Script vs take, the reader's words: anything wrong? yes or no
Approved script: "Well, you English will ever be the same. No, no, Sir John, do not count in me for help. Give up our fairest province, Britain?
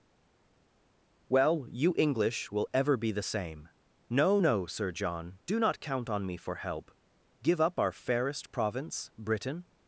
yes